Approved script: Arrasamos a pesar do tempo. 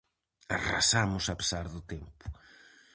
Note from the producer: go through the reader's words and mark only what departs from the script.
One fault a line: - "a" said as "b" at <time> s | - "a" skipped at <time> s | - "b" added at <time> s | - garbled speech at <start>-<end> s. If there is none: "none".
none